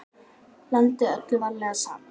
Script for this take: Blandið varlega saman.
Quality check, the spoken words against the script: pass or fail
fail